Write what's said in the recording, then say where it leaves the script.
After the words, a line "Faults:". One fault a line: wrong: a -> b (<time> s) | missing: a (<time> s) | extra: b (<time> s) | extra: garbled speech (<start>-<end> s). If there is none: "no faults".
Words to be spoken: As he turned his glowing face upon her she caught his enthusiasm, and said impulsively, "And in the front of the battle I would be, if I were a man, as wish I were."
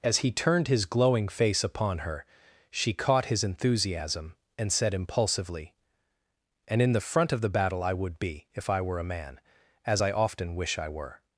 As he turned his glowing face upon her she caught his enthusiasm, and said impulsively, "And in the front of the battle I would be, if I were a man, as I often wish I were."
Faults:
extra: I often (10.0 s)